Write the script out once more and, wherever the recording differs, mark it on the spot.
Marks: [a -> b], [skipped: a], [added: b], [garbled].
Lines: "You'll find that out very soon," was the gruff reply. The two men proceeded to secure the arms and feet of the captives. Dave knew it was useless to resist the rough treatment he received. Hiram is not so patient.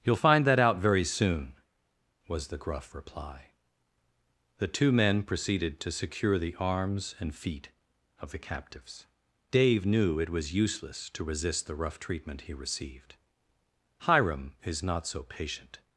"You'll find that out very soon," was the gruff reply. The two men proceeded to secure the arms and feet of the captives. Dave knew it was useless to resist the rough treatment he received. Hiram is not so patient.